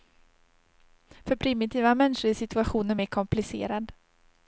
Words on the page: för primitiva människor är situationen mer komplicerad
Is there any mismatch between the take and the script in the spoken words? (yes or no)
no